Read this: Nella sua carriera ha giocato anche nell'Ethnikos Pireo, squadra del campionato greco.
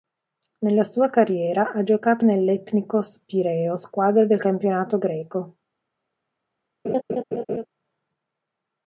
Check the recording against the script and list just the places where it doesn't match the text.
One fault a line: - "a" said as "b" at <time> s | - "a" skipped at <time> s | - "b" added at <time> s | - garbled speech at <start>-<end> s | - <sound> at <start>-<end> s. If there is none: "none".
- "anche" skipped at 2.2 s
- laugh at 6.8-7.7 s